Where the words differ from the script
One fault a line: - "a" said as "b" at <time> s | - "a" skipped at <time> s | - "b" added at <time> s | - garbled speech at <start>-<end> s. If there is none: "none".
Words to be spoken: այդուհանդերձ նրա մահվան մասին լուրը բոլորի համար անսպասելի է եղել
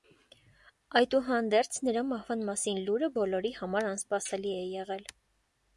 none